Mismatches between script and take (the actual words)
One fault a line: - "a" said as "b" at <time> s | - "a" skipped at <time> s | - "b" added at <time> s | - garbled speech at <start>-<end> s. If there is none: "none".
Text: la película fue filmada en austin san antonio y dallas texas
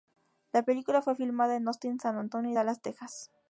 none